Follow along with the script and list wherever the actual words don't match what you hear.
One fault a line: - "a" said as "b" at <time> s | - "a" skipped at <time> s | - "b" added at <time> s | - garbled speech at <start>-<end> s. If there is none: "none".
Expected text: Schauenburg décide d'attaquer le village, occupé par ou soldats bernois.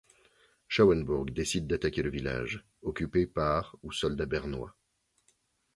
none